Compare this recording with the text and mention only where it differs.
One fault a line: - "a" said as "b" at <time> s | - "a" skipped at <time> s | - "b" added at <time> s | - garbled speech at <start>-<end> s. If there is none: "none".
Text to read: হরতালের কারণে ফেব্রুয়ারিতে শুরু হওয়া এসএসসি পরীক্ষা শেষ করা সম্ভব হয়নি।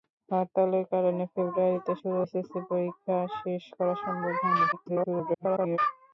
- "হওয়া" skipped at 2.2 s
- garbled speech at 4.7-5.8 s